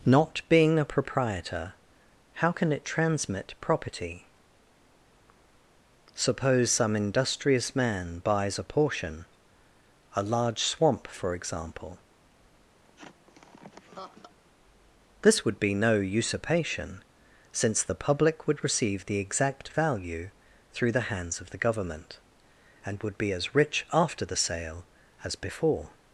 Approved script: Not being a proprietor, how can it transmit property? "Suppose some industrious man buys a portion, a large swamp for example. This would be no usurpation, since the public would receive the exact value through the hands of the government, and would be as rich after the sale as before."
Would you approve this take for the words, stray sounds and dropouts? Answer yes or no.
no